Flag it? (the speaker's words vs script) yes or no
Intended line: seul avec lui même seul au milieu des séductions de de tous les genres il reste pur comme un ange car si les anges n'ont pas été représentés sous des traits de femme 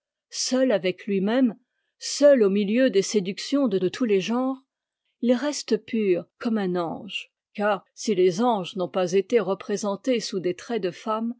no